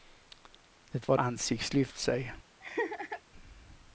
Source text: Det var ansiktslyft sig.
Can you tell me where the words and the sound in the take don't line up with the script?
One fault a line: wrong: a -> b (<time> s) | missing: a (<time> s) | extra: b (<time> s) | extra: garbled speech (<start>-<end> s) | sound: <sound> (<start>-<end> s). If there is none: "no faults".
sound: laugh (2.6-3.2 s)